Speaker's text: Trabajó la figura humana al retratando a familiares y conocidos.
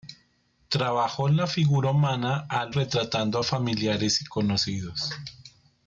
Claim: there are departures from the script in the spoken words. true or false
false